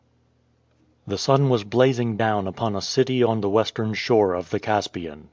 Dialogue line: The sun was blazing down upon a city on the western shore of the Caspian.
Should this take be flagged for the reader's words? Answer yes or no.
no